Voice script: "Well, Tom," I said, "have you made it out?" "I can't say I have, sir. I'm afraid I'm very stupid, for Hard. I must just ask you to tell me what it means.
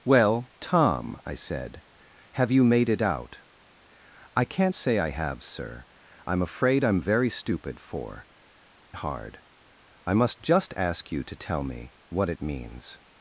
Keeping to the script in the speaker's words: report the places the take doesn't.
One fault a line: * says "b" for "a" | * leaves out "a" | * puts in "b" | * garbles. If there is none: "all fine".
all fine